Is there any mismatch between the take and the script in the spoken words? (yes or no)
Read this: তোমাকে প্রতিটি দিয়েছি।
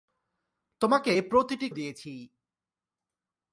no